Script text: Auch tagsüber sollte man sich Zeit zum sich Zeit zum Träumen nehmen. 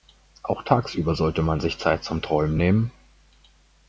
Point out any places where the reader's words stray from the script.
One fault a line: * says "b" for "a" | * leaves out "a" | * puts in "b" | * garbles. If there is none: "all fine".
* leaves out "sich Zeit zum"